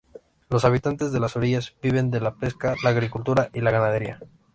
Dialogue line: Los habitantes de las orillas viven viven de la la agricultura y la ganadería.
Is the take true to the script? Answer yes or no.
no